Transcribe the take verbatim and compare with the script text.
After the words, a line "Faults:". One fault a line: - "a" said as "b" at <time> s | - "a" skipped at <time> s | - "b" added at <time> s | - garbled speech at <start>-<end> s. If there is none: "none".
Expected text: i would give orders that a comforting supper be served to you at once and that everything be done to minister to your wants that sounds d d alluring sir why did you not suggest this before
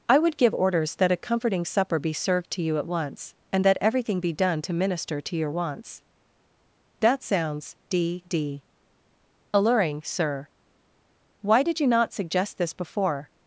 i would give orders that a comforting supper be served to you at once and that everything be done to minister to your wants that sounds d d alluring sir why did you not suggest this before
Faults:
none